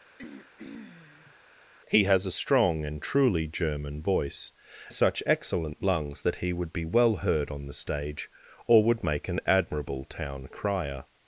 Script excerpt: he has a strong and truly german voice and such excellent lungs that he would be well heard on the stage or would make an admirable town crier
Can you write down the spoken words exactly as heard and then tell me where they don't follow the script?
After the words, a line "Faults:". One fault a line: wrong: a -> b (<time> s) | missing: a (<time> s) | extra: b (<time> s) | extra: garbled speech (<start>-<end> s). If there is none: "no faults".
he has a strong and truly german voice such excellent lungs that he would be well heard on the stage or would make an admirable town crier
Faults:
missing: and (4.5 s)